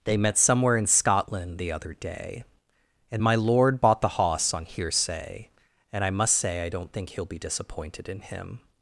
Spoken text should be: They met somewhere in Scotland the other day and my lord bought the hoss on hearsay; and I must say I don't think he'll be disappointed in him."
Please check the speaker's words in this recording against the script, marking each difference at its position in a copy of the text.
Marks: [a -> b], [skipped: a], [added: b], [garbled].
They met somewhere in Scotland the other day and my lord bought the hoss on hearsay; and I must say I don't think he'll be disappointed in him."